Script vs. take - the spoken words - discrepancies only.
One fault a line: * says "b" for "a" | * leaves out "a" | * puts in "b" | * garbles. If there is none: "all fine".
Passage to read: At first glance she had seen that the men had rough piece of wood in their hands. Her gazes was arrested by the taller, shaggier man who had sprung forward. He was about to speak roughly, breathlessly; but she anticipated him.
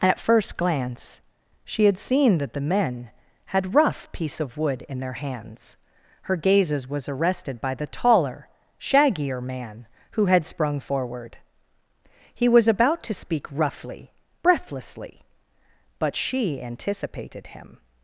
all fine